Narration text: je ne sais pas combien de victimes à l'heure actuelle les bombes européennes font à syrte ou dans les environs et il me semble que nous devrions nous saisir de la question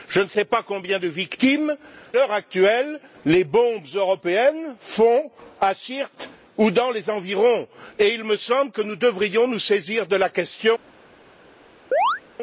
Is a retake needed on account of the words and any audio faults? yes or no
yes